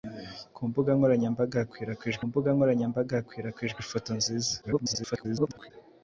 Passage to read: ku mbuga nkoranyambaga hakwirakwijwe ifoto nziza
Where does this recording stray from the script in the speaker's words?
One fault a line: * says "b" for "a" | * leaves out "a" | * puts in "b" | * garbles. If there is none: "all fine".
* puts in "mbuga nkoranyambaga hakwirakwijwe"
* garbles